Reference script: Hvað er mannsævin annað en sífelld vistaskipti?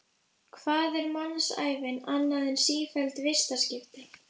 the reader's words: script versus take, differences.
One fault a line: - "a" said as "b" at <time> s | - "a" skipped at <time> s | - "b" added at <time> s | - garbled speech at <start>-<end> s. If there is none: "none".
none